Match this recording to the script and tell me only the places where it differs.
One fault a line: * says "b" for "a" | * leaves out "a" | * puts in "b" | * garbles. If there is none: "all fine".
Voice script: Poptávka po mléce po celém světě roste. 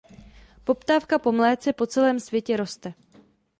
all fine